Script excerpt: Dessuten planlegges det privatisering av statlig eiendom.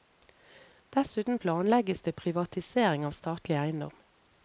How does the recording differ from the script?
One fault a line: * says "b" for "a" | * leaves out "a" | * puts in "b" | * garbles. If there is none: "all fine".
all fine